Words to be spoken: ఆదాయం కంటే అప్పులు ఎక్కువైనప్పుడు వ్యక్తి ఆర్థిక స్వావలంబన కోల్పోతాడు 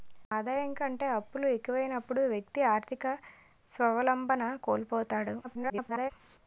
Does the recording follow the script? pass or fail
fail